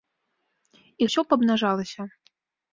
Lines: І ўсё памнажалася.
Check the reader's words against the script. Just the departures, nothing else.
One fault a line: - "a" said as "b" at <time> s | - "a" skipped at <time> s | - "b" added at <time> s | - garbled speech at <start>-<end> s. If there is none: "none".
none